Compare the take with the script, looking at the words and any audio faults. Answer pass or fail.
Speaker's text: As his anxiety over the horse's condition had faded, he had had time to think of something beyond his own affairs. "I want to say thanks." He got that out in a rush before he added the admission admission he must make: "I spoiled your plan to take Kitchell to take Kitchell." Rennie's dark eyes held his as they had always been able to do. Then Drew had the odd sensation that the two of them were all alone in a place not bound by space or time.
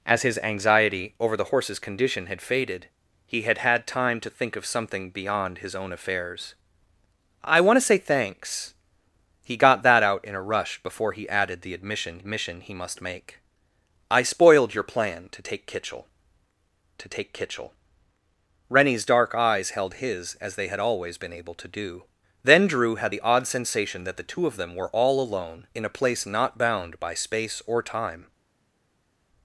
pass